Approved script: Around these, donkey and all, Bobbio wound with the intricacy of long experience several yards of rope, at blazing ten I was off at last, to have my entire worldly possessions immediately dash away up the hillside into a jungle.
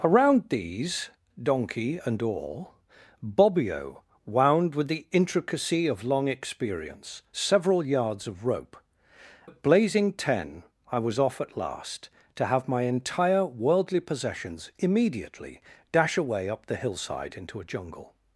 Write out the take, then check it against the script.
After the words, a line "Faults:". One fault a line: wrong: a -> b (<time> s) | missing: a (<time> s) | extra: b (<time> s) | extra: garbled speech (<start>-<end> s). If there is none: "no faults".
Around these, donkey and all, Bobbio wound with the intricacy of long experience several yards of rope, at blazing ten I was off at last, to have my entire worldly possessions immediately dash away up the hillside into a jungle.
Faults:
no faults